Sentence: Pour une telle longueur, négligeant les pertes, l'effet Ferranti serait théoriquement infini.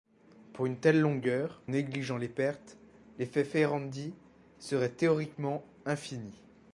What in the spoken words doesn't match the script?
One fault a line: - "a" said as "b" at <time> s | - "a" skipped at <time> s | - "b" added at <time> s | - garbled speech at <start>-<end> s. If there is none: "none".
none